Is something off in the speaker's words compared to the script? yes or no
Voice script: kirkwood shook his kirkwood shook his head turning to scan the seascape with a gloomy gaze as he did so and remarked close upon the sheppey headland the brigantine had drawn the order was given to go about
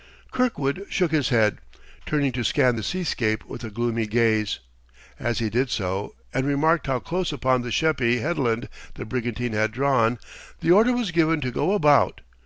yes